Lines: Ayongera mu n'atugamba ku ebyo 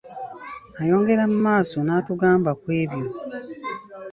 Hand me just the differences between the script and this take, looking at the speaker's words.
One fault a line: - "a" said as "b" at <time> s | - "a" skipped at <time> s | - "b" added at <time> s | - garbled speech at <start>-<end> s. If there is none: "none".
- "maaso" added at 1.5 s